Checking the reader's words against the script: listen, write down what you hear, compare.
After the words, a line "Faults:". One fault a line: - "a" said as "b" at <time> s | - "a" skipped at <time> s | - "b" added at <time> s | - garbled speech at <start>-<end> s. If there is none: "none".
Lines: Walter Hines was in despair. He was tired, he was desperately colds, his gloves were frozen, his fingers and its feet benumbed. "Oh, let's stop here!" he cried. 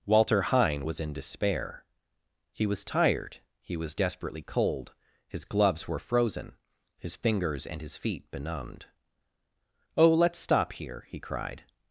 Walter Hine was in despair. He was tired, he was desperately cold, his gloves were frozen, his fingers and his feet benumbed. "Oh, let's stop here!" he cried.
Faults:
- "Hines" said as "Hine" at 0.4 s
- "colds" said as "cold" at 4.4 s
- "its" said as "his" at 7.8 s